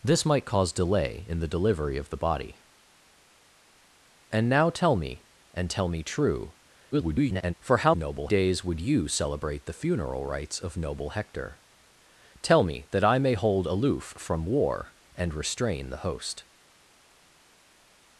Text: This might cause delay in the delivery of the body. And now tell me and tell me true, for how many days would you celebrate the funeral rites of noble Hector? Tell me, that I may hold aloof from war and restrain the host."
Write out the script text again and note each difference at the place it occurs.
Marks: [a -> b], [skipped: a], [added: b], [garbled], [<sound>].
This might cause delay in the delivery of the body. And now tell me and tell me true, [garbled] for how [many -> noble] days would you celebrate the funeral rites of noble Hector? Tell me, that I may hold aloof from war and restrain the host."